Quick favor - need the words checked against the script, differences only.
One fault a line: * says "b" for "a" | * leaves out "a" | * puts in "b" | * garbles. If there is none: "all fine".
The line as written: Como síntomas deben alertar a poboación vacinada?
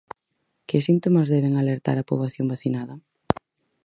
* says "Que" for "Como"